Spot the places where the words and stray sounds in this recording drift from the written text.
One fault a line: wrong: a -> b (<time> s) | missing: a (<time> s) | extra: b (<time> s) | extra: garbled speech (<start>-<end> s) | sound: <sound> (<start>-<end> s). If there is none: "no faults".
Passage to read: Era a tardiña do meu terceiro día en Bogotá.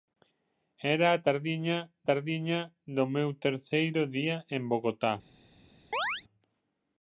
extra: tardiña (2.1 s)
sound: chirp (5.9-6.2 s)